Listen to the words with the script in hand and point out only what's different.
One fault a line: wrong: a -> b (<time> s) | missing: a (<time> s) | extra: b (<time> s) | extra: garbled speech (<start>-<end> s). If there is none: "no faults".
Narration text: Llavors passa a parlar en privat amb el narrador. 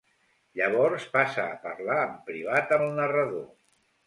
missing: amb (2.7 s)